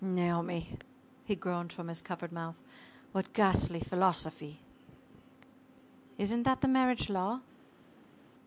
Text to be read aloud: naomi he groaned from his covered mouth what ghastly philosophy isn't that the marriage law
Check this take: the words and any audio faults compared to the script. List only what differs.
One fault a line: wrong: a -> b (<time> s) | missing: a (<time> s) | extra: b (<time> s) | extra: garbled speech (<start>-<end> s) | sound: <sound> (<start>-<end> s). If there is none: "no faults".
no faults